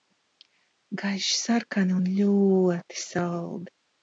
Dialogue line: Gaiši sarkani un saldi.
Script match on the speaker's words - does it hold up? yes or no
no